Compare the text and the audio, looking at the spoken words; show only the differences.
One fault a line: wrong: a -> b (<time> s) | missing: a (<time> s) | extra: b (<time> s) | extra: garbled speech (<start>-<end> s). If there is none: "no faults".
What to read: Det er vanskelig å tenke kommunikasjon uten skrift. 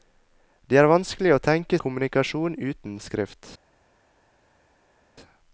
no faults